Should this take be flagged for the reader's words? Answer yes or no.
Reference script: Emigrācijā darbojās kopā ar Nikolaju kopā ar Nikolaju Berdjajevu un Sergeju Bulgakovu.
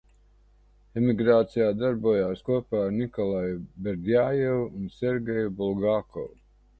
yes